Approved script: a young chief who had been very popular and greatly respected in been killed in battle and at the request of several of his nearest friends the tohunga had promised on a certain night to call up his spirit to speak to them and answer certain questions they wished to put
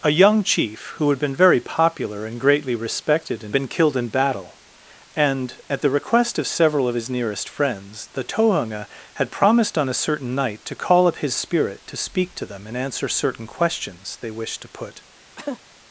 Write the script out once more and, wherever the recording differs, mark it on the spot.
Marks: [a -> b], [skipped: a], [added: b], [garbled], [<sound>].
a young chief who had been very popular and greatly respected in been killed in battle and at the request of several of his nearest friends the tohunga had promised on a certain night to call up his spirit to speak to them and answer certain questions they wished to put [cough]